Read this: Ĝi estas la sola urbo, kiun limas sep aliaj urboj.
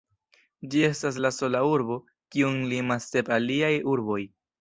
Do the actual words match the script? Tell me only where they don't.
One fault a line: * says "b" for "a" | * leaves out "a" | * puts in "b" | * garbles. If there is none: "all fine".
all fine